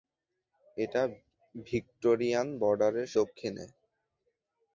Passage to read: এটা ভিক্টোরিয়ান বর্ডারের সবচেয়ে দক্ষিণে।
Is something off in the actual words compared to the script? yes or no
yes